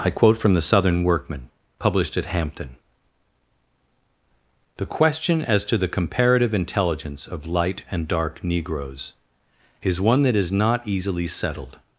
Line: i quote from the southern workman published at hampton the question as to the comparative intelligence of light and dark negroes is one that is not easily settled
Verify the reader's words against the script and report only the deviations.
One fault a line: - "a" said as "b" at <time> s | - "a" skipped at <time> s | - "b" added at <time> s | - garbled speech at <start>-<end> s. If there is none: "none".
none